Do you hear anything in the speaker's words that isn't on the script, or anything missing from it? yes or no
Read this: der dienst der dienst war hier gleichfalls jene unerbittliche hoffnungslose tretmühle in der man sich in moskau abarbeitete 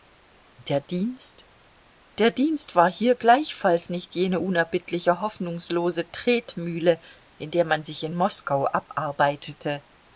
yes